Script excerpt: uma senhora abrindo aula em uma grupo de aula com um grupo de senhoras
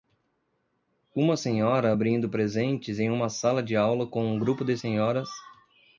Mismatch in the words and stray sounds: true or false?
true